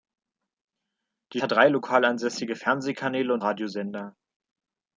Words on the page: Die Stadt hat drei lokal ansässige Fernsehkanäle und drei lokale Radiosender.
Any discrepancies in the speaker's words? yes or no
yes